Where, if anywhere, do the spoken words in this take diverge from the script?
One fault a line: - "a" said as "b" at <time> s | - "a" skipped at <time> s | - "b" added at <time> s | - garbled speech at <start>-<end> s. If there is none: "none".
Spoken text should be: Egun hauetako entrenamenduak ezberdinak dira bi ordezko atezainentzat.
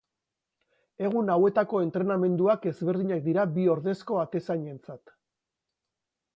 none